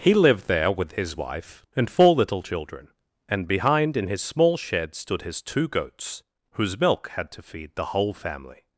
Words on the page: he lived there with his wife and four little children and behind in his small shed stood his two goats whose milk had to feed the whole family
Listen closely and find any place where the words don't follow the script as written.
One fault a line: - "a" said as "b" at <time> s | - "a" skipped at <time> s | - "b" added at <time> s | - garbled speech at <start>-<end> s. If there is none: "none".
none